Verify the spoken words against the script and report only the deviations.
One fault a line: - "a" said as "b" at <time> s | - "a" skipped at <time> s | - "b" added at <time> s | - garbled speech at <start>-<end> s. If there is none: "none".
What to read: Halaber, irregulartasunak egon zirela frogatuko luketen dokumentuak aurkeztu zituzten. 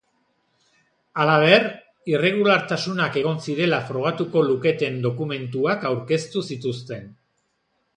none